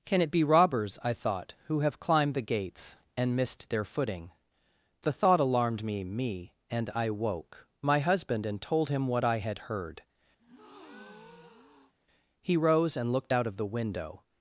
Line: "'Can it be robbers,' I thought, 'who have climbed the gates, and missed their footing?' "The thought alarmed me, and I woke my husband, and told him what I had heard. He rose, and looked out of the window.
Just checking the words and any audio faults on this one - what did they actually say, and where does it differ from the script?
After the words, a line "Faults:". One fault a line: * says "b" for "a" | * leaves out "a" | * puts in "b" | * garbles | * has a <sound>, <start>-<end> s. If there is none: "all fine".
"'Can it be robbers,' I thought, 'who have climbed the gates, and missed their footing?' "The thought alarmed me me, and I woke my husband, and told him what I had heard. He rose, and looked out of the window.
Faults:
* puts in "me"
* has a breath, 10.4-11.9 s